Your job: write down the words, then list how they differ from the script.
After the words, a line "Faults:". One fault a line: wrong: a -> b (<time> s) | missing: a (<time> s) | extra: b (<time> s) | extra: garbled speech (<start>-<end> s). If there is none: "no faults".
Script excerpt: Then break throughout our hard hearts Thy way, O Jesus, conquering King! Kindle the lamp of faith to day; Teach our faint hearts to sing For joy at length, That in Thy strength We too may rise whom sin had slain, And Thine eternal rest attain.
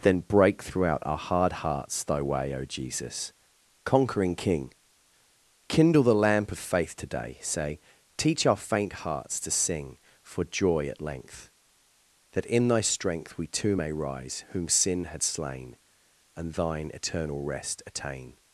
Then break throughout our hard hearts Thy way, O Jesus, conquering King! Kindle the lamp of faith today say; Teach our faint hearts to sing For joy at length, That in Thy strength We too may rise whom sin had slain, And Thine eternal rest attain.
Faults:
wrong: to day -> today say (7.0 s)